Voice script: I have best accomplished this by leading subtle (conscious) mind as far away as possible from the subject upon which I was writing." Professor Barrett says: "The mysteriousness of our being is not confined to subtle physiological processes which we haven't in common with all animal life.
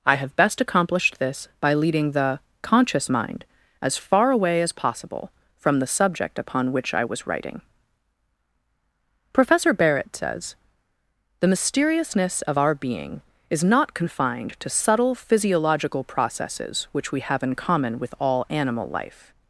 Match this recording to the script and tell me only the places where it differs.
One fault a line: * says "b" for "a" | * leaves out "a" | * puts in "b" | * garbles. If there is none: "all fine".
* says "the" for "subtle"
* says "have" for "haven't"